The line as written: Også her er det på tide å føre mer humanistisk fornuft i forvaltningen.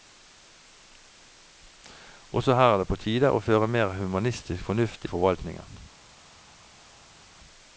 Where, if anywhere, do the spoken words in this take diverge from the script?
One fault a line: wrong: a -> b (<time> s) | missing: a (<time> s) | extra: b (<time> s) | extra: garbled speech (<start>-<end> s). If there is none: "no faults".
no faults